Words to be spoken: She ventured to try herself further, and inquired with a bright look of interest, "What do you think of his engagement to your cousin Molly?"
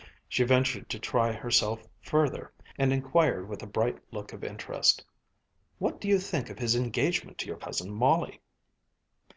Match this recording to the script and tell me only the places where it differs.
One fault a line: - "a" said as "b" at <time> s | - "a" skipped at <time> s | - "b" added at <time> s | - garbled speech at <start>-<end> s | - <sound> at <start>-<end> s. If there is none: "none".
none